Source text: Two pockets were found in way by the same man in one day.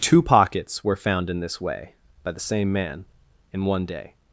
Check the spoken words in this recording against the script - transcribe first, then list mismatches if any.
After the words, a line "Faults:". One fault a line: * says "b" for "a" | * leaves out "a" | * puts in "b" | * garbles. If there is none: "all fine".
Two pockets were found in this way by the same man in one day.
Faults:
* puts in "this"